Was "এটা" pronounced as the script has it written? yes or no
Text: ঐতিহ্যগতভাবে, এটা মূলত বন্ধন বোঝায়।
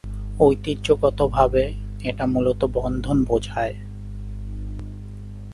yes